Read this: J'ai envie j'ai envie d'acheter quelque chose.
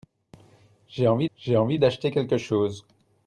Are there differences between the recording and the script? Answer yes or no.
no